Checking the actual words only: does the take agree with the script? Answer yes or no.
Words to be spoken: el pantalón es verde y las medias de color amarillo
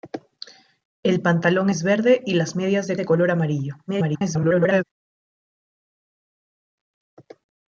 no